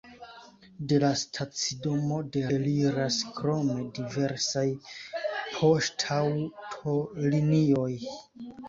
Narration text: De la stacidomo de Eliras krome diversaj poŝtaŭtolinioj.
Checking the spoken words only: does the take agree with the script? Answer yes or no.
yes